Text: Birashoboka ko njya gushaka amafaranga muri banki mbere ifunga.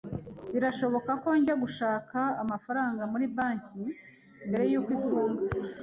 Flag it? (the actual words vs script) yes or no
yes